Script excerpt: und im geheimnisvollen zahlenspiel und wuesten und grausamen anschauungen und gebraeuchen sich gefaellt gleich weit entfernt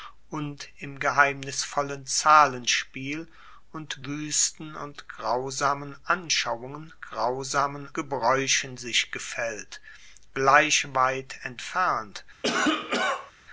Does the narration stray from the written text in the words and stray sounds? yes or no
yes